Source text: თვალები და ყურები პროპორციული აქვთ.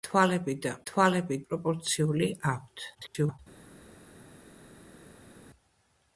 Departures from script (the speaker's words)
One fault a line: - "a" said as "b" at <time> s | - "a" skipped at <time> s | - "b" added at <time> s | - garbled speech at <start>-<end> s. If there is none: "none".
- "ყურები" said as "თვალები" at 0.9 s
- garbled speech at 2.9-3.4 s